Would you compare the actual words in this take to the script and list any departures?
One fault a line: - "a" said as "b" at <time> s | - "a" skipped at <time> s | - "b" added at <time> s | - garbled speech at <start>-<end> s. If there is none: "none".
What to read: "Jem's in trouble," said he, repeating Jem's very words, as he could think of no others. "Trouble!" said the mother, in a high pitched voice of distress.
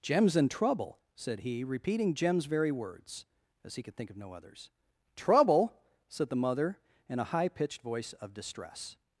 none